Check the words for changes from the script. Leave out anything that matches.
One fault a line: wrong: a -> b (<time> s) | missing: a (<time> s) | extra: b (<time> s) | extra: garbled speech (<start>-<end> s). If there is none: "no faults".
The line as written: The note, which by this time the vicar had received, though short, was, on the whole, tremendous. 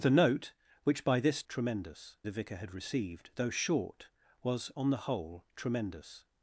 wrong: time -> tremendous (1.5 s)